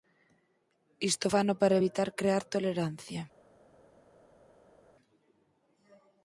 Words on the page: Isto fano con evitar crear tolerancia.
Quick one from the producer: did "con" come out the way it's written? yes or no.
no